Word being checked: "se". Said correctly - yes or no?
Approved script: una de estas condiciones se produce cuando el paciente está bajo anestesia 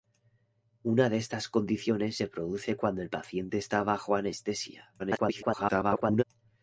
yes